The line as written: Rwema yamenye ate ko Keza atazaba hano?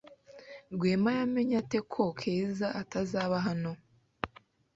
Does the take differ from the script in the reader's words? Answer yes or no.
no